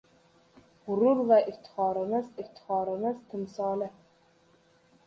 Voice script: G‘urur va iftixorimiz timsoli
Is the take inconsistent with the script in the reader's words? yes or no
yes